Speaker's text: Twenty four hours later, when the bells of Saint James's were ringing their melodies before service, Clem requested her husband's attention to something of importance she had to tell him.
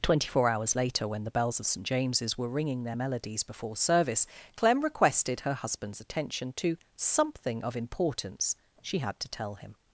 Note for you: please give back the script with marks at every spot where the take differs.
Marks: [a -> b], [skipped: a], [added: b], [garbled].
Twenty four hours later, when the bells of Saint James's were ringing their melodies before service, Clem requested her husband's attention to something of importance she had to tell him.